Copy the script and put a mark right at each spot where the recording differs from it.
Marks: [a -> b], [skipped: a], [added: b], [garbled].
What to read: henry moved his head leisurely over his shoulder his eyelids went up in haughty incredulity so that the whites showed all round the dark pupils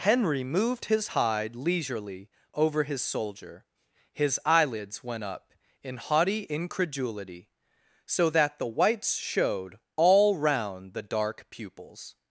henry moved his [head -> hide] leisurely over his [shoulder -> soldier] his eyelids went up in haughty incredulity so that the whites showed all round the dark pupils